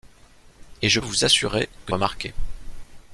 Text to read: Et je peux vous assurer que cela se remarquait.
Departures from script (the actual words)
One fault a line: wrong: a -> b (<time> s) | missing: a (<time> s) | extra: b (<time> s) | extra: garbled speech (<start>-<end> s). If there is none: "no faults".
missing: peux (1.0 s)
missing: cela se (1.9 s)